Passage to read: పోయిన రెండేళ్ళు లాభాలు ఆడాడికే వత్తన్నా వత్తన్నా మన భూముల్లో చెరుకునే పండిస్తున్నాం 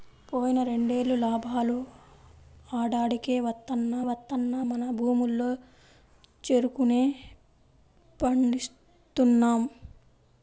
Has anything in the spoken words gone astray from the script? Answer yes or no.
no